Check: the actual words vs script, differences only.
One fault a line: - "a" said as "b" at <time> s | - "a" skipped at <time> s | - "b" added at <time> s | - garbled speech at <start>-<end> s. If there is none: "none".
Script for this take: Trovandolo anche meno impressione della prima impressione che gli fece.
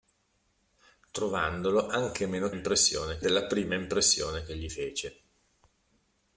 none